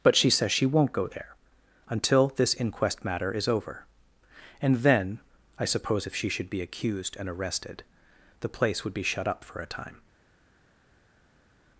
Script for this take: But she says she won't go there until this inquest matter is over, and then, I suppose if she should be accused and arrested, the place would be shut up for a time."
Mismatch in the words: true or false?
false